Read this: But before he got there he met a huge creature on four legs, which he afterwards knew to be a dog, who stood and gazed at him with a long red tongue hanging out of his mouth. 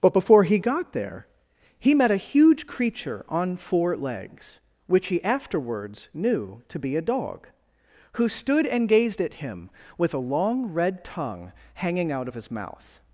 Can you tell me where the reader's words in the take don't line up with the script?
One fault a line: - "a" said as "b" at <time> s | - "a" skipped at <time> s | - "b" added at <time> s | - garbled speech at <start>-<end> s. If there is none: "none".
none